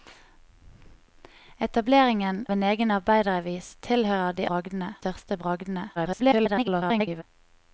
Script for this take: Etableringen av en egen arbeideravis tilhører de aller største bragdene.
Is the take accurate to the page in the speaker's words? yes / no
no